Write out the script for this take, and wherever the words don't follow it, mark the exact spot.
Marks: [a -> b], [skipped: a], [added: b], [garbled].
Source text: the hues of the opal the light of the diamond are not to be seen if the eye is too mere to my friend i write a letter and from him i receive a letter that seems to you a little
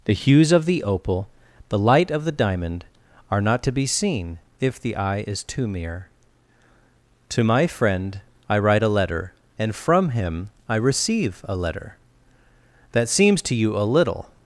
the hues of the opal the light of the diamond are not to be seen if the eye is too mere to my friend i write a letter and from him i receive a letter that seems to you a little